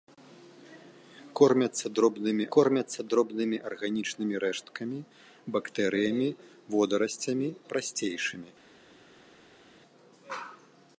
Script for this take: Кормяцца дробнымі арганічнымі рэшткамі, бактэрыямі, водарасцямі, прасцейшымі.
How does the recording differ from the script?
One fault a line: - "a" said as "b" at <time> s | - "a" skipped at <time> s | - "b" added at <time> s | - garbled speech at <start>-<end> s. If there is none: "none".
- "кормяцца дробнымі" added at 2.5 s